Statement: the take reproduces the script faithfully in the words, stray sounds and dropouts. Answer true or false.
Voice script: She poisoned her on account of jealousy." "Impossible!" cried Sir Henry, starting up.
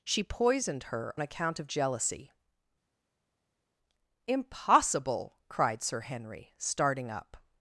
false